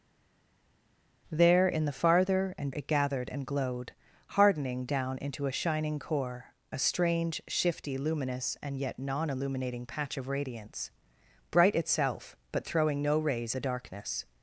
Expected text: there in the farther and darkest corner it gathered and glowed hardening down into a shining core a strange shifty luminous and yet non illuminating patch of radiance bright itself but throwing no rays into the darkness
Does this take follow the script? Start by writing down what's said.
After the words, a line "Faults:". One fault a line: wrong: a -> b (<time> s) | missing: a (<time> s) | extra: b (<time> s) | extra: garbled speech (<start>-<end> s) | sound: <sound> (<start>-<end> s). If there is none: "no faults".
there in the farther and it gathered and glowed hardening down into a shining core a strange shifty luminous and yet non illuminating patch of radiance bright itself but throwing no rays the darkness
Faults:
missing: darkest corner (2.7 s)
missing: into (13.5 s)